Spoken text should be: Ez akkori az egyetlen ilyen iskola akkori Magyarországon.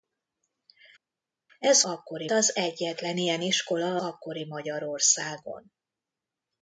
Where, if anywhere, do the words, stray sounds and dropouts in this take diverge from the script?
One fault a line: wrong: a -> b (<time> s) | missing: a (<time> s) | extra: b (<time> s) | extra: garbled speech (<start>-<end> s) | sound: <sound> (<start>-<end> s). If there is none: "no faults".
no faults